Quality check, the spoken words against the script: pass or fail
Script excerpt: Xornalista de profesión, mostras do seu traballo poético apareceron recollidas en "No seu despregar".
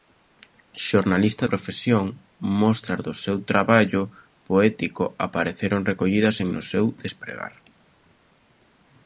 fail